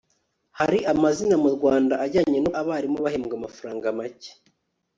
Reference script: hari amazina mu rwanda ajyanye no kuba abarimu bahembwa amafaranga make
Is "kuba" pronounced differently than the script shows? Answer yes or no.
yes